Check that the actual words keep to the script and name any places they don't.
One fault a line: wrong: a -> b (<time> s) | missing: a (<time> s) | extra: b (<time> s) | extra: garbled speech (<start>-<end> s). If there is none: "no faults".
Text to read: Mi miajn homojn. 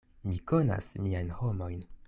extra: konas (0.5 s)